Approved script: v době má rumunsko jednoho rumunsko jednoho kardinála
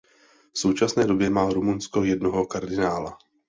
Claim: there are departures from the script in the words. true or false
true